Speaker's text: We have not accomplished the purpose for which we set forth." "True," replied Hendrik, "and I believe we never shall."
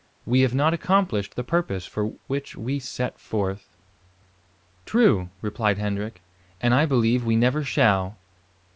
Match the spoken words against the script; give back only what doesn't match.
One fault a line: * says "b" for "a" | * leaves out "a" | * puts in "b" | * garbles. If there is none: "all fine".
all fine